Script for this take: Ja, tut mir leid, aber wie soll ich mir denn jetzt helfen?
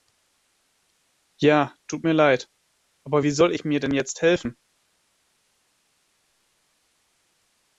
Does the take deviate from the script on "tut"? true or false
false